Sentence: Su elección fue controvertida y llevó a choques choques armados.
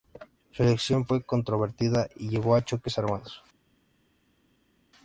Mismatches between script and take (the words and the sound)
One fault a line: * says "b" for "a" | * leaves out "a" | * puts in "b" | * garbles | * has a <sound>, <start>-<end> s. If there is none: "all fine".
* leaves out "choques"